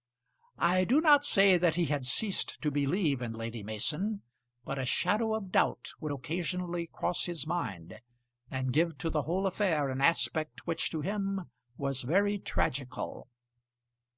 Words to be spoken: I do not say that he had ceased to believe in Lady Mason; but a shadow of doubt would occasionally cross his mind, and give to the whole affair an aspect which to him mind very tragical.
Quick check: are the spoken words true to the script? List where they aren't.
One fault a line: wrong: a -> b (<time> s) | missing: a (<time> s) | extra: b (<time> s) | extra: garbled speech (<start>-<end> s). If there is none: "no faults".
wrong: mind -> was (11.8 s)